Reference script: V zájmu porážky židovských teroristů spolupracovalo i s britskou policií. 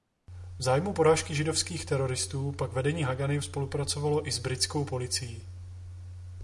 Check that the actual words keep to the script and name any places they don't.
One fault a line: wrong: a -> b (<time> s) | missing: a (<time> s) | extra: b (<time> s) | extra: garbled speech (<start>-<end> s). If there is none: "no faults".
extra: pak vedení Hagany (2.5 s)